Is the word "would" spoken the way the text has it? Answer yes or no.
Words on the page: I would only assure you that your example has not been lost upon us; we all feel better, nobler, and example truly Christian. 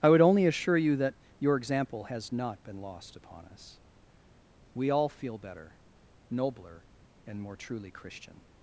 yes